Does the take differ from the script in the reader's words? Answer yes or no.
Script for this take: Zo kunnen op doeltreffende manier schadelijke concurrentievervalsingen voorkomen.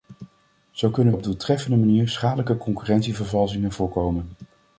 no